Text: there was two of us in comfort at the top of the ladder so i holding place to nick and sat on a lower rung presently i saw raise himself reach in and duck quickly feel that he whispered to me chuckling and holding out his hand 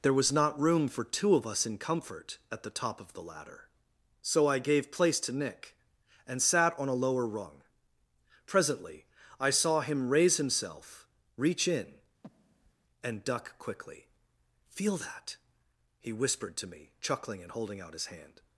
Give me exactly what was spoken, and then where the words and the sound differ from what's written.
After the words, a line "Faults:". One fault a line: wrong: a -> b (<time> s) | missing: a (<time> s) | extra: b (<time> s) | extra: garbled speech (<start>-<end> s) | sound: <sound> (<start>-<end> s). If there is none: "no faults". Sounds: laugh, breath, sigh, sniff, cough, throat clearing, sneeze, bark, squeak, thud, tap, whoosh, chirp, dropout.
there was not room for two of us in comfort at the top of the ladder so i gave place to nick and sat on a lower rung presently i saw him raise himself reach in and duck quickly feel that he whispered to me chuckling and holding out his hand
Faults:
extra: not room for (0.3 s)
wrong: holding -> gave (4.6 s)
extra: him (9.8 s)
sound: breath (12.2-12.7 s)